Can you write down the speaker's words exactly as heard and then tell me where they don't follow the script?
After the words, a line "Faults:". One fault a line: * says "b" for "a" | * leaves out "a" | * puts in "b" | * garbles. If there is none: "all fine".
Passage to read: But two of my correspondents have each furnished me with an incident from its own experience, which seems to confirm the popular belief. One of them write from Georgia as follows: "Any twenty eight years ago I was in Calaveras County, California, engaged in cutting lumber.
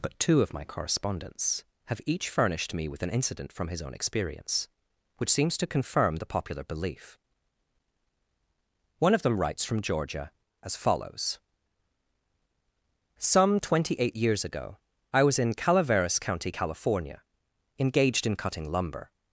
But two of my correspondents have each furnished me with an incident from his own experience, which seems to confirm the popular belief. One of them writes from Georgia as follows: "Some twenty eight years ago I was in Calaveras County, California, engaged in cutting lumber.
Faults:
* says "his" for "its"
* says "writes" for "write"
* says "Some" for "Any"